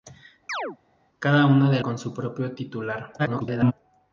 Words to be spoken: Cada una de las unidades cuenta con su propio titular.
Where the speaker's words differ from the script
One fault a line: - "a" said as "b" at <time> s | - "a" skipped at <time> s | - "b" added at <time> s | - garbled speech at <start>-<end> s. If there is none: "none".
- "las unidades cuenta" skipped at 1.8 s
- garbled speech at 3.2-3.7 s